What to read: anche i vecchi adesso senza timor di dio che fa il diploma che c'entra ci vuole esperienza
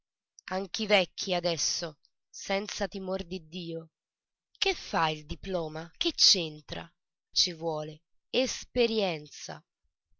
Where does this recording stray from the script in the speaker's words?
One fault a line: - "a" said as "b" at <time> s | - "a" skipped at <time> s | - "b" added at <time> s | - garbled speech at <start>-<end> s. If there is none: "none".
none